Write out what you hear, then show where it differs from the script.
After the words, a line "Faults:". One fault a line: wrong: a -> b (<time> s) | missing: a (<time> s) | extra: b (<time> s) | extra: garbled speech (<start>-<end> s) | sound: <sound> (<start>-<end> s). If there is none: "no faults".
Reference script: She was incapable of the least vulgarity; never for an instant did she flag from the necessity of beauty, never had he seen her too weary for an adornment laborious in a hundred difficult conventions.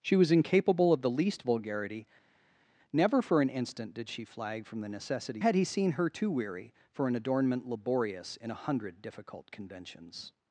She was incapable of the least vulgarity; never for an instant did she flag from the necessity had he seen her too weary for an adornment laborious in a hundred difficult conventions.
Faults:
missing: of beauty never (5.4 s)